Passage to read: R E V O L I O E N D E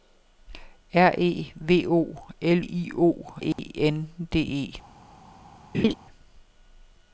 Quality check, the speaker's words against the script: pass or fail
pass